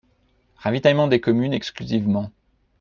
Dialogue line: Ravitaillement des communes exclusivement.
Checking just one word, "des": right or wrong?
right